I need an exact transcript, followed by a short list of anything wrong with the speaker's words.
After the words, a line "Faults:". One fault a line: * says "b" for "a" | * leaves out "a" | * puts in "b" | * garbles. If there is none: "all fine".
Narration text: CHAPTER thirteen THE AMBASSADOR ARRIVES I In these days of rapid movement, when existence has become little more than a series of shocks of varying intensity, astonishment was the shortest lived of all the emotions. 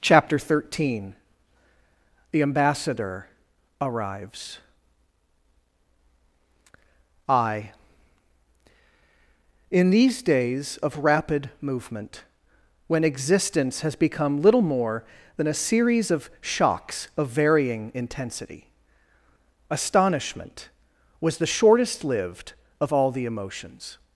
CHAPTER thirteen THE AMBASSADOR ARRIVES I In these days of rapid movement, when existence has become little more than a series of shocks of varying intensity, astonishment was the shortest lived of all the emotions.
Faults:
all fine